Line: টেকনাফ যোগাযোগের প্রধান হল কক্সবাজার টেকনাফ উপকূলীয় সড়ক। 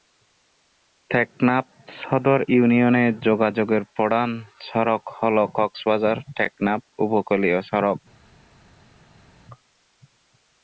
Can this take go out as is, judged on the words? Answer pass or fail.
fail